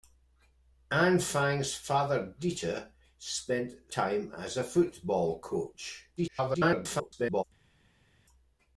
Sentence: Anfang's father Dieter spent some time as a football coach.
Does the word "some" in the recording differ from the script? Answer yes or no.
yes